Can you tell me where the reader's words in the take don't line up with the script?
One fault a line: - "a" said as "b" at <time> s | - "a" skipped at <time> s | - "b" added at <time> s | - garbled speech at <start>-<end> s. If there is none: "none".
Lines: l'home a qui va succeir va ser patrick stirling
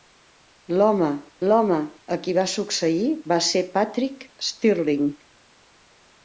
- "l'home" added at 1.5 s